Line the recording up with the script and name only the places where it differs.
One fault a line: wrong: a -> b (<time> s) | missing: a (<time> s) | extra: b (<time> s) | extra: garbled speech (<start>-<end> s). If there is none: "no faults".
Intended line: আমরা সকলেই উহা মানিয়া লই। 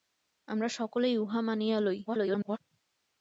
extra: garbled speech (2.0-2.6 s)